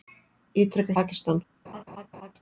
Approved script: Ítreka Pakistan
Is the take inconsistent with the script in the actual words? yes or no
no